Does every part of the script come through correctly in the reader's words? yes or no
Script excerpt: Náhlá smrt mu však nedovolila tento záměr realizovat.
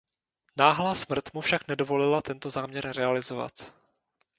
yes